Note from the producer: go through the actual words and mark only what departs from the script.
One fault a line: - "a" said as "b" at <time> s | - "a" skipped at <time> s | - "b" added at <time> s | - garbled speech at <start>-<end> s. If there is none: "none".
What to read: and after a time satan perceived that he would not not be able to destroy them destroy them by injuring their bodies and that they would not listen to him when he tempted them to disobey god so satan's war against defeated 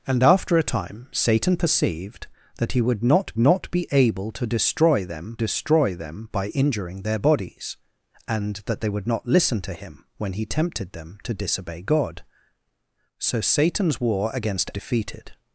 none